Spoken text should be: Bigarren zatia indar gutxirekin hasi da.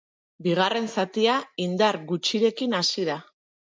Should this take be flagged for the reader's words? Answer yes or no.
no